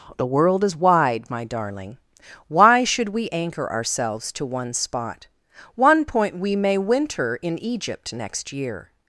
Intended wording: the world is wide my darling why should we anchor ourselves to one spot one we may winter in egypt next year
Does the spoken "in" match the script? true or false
true